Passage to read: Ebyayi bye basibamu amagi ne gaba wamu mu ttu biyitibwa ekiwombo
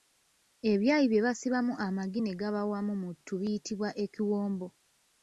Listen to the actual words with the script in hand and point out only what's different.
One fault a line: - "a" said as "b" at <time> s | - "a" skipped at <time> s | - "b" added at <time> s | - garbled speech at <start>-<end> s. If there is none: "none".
none